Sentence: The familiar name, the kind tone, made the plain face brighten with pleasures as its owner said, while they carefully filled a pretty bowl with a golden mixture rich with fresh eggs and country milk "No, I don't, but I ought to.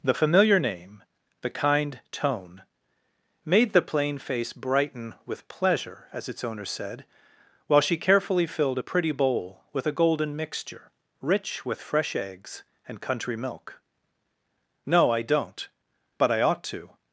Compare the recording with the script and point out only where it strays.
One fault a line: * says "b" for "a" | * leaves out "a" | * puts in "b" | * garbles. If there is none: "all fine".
* says "pleasure" for "pleasures"
* says "she" for "they"